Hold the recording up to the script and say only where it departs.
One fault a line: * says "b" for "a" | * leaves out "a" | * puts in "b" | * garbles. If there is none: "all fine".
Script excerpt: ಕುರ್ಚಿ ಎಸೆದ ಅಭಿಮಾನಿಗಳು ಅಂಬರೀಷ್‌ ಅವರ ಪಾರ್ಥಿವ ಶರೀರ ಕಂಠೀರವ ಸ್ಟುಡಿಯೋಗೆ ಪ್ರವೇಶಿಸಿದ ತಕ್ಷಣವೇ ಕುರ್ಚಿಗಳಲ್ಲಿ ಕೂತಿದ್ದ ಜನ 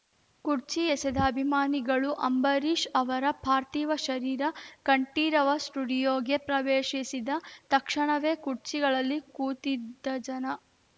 all fine